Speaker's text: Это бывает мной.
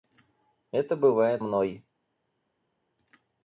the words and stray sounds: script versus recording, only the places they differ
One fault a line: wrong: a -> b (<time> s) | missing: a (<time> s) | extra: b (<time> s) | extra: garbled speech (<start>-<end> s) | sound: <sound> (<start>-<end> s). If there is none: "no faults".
no faults